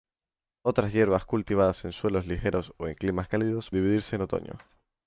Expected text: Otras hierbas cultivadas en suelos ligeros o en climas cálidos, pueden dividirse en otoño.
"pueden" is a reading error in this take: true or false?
true